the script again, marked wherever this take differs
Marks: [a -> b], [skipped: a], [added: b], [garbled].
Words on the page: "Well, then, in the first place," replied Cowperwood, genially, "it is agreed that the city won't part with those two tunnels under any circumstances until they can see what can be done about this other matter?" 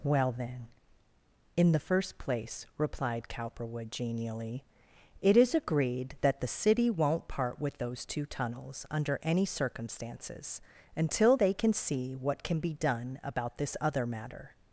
"Well, then, in the first place," replied Cowperwood, genially, "it is agreed that the city won't part with those two tunnels under any circumstances until they can see what can be done about this other matter?"